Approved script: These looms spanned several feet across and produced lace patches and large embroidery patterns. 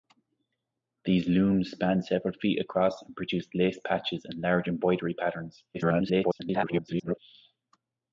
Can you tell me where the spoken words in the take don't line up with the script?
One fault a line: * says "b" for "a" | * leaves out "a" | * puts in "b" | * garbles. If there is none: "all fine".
* garbles